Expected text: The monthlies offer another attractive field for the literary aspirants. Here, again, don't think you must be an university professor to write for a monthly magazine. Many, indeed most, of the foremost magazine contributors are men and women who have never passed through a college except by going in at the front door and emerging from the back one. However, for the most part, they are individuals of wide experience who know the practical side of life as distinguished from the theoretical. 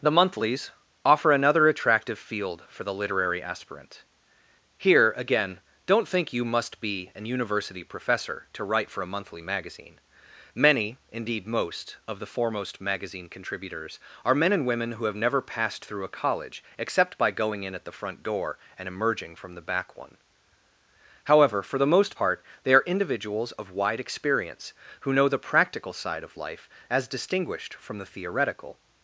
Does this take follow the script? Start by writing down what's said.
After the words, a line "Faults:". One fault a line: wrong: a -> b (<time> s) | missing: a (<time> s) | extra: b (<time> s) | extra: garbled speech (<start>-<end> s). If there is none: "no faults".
The monthlies offer another attractive field for the literary aspirant. Here, again, don't think you must be an university professor to write for a monthly magazine. Many, indeed most, of the foremost magazine contributors are men and women who have never passed through a college except by going in at the front door and emerging from the back one. However, for the most part, they are individuals of wide experience who know the practical side of life as distinguished from the theoretical.
Faults:
wrong: aspirants -> aspirant (3.4 s)